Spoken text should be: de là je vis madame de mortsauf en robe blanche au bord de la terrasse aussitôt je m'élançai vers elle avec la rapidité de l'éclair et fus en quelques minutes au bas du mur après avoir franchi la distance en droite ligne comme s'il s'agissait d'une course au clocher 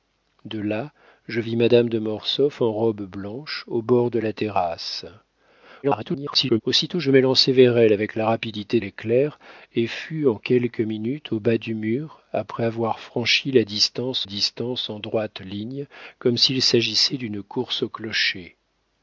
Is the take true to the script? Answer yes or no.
no